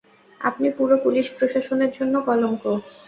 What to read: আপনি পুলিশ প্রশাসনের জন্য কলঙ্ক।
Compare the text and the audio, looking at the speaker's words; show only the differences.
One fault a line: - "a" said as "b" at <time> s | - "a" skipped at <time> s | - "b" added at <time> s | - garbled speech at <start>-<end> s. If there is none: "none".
- "পুরো" added at 0.8 s